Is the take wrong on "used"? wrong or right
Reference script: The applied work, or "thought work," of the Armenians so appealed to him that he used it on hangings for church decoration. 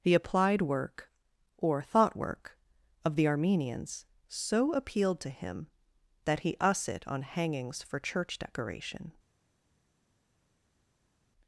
wrong